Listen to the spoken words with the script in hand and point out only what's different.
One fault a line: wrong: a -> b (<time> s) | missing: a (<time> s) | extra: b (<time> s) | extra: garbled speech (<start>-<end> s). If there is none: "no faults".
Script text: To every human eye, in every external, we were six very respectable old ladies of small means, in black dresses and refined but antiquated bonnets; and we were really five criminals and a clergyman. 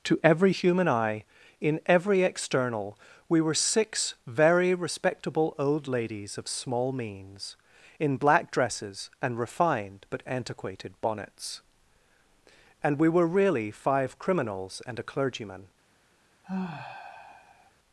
no faults